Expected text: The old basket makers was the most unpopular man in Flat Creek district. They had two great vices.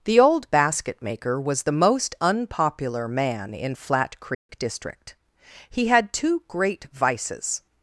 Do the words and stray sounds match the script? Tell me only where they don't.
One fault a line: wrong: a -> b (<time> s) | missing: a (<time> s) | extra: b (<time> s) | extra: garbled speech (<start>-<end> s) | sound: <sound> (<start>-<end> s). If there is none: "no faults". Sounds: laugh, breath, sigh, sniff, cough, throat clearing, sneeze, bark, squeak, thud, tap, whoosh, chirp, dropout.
wrong: makers -> maker (1.0 s)
sound: dropout (4.3-4.5 s)
wrong: They -> He (5.7 s)